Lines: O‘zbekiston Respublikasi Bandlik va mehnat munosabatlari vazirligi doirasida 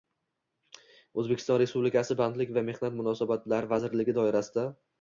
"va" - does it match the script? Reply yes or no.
yes